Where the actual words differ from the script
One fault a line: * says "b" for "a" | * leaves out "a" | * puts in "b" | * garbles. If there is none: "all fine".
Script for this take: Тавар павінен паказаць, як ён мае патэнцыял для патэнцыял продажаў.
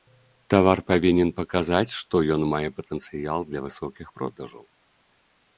* says "што" for "як"
* says "высокіх" for "патэнцыял"